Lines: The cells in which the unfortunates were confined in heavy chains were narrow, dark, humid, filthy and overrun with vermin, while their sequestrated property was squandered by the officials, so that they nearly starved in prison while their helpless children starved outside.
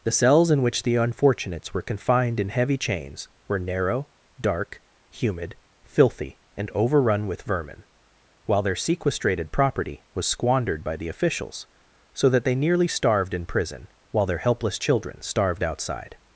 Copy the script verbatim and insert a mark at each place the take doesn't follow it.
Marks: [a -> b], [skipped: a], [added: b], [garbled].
The cells in which the unfortunates were confined in heavy chains were narrow, dark, humid, filthy and overrun with vermin, while their sequestrated property was squandered by the officials, so that they nearly starved in prison while their helpless children starved outside.